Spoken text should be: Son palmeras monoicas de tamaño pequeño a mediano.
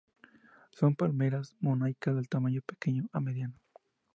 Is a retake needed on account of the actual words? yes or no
no